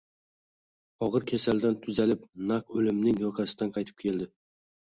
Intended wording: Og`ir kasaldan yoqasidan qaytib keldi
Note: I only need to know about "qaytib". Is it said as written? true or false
true